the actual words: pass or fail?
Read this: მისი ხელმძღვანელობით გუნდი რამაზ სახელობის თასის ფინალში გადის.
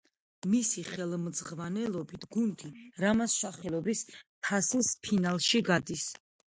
pass